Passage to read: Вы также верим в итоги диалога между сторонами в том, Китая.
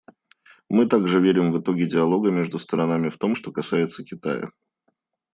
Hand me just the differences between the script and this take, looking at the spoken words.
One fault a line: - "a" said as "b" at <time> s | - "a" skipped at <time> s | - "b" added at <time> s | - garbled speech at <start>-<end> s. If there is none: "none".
- "Вы" said as "Мы" at 0.7 s
- "что касается" added at 3.3 s